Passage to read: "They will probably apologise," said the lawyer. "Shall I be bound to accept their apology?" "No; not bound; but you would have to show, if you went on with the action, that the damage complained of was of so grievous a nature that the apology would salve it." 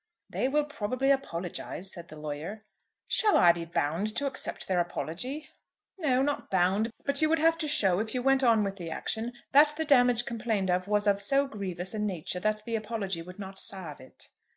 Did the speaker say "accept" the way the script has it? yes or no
yes